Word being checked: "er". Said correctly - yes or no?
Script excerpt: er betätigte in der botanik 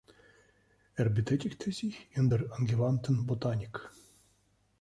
yes